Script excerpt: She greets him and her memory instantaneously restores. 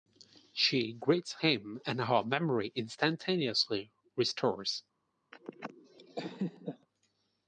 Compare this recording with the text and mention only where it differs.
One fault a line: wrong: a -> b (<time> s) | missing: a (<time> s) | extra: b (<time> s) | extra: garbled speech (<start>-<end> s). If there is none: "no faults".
no faults